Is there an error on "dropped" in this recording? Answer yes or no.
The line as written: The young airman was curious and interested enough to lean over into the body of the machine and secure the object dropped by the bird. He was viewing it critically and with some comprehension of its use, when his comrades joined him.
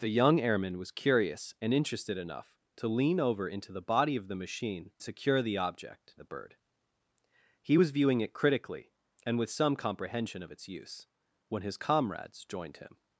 yes